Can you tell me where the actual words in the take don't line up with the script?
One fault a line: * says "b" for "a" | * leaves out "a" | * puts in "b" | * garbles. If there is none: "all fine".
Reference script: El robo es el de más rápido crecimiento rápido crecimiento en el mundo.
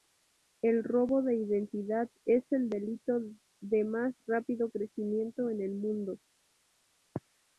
* puts in "de identidad"
* puts in "delito"
* leaves out "rápido crecimiento"